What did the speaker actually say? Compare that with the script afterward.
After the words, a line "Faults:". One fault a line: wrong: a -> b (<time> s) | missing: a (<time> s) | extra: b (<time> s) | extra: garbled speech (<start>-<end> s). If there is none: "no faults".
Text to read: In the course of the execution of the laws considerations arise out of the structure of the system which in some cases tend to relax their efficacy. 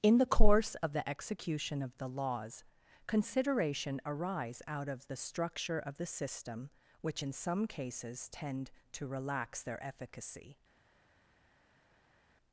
In the course of the execution of the laws consideration arise out of the structure of the system which in some cases tend to relax their efficacy.
Faults:
wrong: considerations -> consideration (3.0 s)